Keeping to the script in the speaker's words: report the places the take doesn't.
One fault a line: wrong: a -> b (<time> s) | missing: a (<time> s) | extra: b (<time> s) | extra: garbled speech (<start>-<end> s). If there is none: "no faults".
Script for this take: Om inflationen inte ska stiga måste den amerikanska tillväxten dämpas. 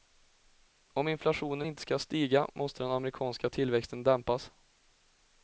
no faults